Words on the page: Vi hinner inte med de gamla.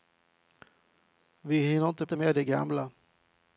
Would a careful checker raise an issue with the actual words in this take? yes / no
yes